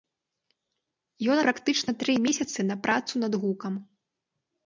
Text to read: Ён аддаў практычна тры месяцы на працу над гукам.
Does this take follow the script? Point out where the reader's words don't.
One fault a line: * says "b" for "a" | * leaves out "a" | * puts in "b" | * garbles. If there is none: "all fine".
* leaves out "аддаў"